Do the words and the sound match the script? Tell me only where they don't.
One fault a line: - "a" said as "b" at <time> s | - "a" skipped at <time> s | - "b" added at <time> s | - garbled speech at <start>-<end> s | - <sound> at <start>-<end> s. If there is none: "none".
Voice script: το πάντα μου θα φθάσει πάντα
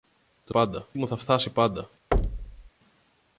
- thud at 2.1-2.7 s